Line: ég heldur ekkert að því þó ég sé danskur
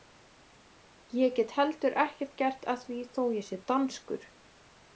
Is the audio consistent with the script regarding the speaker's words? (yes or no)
no